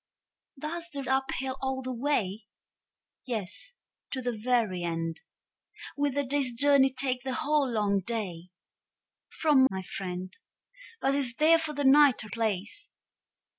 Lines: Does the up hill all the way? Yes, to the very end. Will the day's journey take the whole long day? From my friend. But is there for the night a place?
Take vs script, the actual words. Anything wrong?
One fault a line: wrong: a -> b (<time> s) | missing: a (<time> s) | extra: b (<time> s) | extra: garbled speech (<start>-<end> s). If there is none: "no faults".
no faults